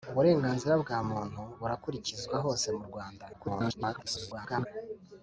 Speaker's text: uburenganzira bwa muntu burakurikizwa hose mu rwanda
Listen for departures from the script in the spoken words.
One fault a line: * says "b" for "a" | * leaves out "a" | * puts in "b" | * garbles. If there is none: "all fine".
* garbles